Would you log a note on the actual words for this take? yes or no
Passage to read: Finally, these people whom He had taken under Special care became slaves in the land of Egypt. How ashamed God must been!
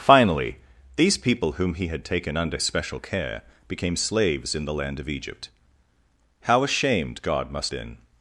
no